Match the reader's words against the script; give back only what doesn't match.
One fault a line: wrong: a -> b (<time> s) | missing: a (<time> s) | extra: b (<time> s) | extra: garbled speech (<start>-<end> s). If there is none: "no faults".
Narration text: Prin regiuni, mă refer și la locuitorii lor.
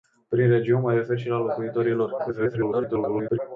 extra: garbled speech (2.2-3.4 s)